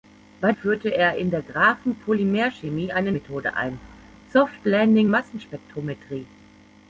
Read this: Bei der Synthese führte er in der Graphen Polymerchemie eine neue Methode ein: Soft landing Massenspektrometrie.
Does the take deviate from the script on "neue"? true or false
true